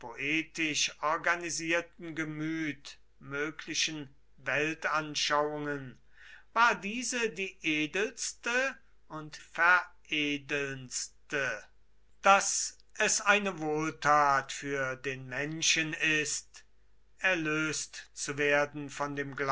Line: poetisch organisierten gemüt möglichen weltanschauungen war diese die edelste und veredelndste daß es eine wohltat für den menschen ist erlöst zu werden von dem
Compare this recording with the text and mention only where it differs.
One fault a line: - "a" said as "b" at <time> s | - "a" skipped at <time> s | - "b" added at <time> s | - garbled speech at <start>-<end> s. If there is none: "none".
none